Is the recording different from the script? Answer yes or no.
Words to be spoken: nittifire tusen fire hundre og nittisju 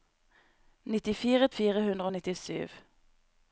yes